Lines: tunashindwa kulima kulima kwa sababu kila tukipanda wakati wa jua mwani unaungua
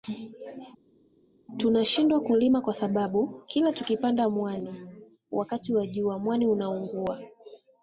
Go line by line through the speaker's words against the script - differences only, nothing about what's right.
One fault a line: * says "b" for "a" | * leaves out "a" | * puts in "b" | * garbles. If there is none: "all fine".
* leaves out "kulima"
* puts in "mwani"